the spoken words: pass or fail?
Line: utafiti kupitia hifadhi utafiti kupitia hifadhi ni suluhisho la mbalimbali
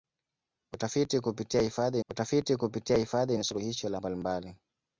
pass